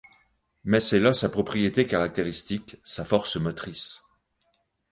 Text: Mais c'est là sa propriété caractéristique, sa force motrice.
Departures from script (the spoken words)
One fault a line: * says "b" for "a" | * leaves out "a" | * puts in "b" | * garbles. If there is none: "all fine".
all fine